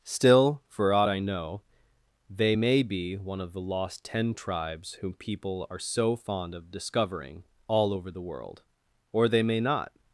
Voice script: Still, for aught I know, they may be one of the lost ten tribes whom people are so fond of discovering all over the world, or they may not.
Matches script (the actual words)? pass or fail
pass